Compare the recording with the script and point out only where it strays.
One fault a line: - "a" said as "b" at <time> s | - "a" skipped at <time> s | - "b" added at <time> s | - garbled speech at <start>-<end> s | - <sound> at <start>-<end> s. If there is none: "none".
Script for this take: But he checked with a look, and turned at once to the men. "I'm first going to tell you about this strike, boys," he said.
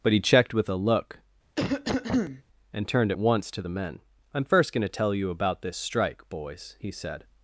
- cough at 1.6-2.4 s